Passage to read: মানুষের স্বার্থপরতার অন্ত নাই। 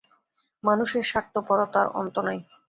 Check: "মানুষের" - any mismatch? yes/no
no